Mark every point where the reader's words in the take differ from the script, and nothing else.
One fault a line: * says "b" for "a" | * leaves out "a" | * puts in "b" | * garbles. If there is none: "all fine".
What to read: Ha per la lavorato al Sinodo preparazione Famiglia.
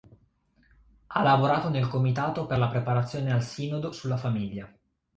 * puts in "lavorato nel comitato"
* says "preparazione" for "lavorato"
* says "sulla" for "preparazione"